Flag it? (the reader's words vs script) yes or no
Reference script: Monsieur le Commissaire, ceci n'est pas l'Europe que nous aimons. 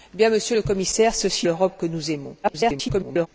yes